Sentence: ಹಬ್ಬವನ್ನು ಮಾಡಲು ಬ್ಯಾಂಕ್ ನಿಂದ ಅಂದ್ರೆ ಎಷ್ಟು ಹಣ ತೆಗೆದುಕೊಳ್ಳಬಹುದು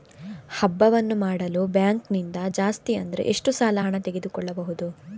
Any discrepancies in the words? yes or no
yes